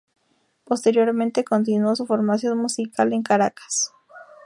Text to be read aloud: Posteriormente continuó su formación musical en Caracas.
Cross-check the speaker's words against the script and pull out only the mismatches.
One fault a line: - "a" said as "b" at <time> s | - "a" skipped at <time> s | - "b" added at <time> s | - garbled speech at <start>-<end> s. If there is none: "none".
none